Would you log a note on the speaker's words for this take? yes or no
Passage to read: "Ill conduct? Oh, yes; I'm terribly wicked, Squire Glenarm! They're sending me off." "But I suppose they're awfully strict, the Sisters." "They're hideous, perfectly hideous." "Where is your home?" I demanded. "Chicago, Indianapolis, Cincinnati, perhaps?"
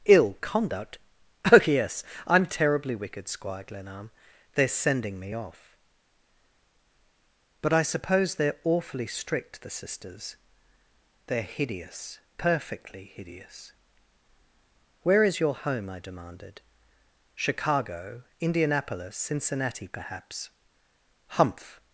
yes